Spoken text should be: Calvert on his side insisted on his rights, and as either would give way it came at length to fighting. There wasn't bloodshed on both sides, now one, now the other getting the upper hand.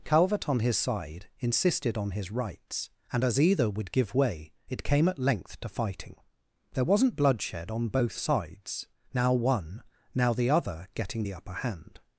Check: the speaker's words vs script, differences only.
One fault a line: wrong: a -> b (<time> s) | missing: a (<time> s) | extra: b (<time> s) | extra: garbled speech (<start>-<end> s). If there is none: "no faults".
no faults